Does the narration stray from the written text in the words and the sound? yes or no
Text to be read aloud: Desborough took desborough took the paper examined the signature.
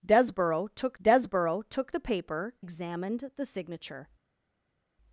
no